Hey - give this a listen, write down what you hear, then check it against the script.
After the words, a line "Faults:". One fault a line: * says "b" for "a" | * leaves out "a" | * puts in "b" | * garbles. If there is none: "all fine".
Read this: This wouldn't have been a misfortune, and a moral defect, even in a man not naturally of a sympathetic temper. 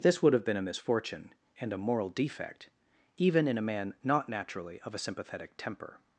This would have been a misfortune, and a moral defect, even in a man not naturally of a sympathetic temper.
Faults:
* says "would" for "wouldn't"